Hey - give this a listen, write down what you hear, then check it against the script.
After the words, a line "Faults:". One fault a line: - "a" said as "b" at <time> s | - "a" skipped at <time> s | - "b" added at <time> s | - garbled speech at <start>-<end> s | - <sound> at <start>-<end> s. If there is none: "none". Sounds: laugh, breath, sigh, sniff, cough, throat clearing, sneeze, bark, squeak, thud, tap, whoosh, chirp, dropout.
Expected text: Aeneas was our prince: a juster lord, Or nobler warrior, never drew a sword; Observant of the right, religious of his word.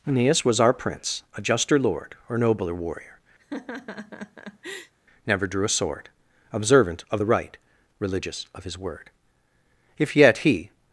Aeneas was our prince: a juster lord, Or nobler warrior, never drew a sword; Observant of the right, religious of his word. If yet he
Faults:
- laugh at 3.4-4.9 s
- "If yet he" added at 10.0 s